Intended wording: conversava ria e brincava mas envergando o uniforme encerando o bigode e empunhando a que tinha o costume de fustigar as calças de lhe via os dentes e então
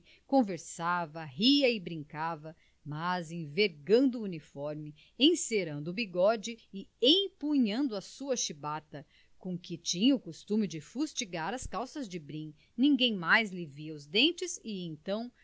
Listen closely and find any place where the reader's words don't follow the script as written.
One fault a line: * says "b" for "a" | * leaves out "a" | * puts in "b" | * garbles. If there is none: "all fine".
* puts in "sua chibata com"
* puts in "brim ninguém mais"